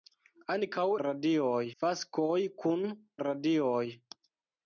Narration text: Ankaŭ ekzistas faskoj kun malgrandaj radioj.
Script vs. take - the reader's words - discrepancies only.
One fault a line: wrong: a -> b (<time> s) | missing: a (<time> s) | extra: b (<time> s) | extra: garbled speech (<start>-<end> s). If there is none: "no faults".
wrong: ekzistas -> radioj (1.0 s)
missing: malgrandaj (2.8 s)